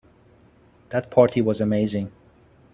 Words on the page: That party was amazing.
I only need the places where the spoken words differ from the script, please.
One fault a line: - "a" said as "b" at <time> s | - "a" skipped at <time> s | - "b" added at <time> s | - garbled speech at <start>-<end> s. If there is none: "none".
none